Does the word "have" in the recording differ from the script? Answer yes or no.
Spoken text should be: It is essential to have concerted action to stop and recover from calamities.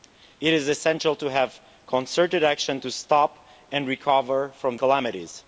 no